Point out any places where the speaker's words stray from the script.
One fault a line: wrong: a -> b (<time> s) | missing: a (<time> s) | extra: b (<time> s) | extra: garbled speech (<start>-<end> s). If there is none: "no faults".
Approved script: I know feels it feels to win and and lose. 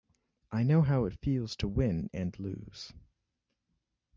wrong: feels -> how (0.8 s)
missing: and (2.4 s)